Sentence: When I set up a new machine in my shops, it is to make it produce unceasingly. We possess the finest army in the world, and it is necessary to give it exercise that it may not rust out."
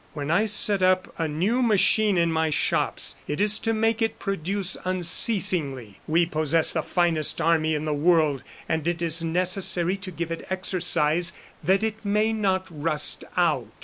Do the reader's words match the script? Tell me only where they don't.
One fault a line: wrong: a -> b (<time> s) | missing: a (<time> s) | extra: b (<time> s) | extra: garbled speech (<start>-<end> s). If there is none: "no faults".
no faults